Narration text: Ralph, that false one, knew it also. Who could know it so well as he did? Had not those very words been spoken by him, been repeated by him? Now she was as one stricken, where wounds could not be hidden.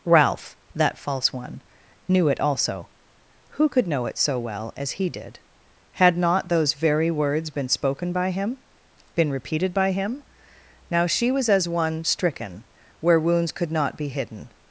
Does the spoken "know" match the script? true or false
true